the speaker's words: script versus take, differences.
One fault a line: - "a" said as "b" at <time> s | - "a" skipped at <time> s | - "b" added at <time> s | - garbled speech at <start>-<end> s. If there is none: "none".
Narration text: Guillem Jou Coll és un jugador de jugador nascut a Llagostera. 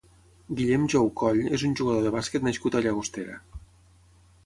- "jugador" said as "bàsquet" at 2.2 s